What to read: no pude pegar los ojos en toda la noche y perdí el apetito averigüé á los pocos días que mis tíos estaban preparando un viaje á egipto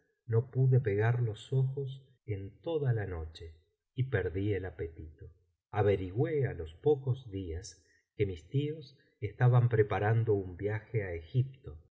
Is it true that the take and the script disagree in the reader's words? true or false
false